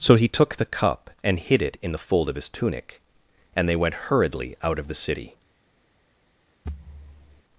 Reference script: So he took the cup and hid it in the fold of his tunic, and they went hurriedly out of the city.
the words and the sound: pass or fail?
fail